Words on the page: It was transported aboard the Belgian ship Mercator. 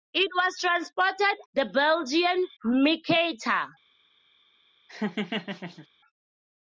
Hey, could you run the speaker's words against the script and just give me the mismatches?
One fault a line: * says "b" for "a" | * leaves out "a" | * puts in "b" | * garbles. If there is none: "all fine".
* leaves out "aboard"
* leaves out "ship"